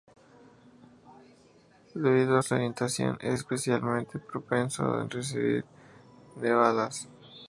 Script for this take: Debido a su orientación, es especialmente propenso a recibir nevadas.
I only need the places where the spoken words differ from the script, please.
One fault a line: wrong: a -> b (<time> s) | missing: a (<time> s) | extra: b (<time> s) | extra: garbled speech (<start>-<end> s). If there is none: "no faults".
no faults